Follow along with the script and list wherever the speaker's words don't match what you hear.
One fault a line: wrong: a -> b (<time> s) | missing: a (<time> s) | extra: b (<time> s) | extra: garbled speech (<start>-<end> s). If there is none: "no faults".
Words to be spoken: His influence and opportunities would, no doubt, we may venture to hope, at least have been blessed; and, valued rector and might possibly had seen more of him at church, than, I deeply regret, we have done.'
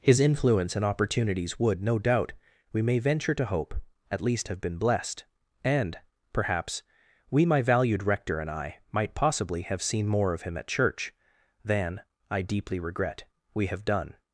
extra: perhaps we my (6.3 s)
extra: I (8.5 s)
wrong: had -> have (9.6 s)